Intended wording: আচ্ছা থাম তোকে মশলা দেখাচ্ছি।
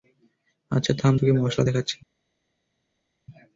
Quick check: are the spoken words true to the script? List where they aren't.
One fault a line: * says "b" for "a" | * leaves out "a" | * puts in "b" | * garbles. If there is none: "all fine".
all fine